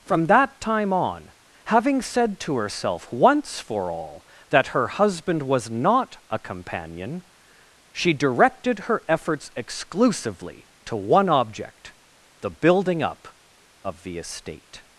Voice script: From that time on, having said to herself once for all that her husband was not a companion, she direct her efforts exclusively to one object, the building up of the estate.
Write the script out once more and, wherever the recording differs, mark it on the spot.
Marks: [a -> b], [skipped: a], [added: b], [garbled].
From that time on, having said to herself once for all that her husband was not a companion, she [direct -> directed] her efforts exclusively to one object, the building up of the estate.